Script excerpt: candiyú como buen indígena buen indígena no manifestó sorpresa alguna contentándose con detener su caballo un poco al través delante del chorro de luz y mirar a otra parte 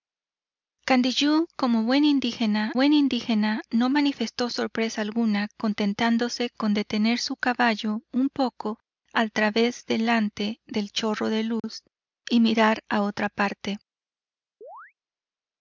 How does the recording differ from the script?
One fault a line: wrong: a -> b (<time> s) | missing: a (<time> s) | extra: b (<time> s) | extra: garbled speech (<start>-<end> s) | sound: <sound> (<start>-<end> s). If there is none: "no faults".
sound: dropout (11.6-11.6 s)
sound: chirp (14.6-14.9 s)